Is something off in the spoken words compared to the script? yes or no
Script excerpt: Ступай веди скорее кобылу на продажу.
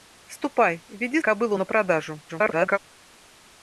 yes